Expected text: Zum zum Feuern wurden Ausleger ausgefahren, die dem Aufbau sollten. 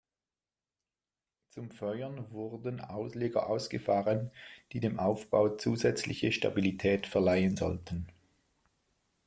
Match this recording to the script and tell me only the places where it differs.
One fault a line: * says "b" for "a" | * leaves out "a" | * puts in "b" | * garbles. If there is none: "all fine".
* leaves out "zum"
* puts in "zusätzliche Stabilität verleihen"